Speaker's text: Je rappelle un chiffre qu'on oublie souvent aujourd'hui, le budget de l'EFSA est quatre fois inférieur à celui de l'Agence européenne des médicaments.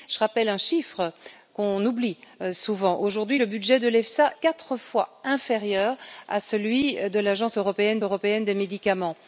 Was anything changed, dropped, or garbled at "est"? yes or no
yes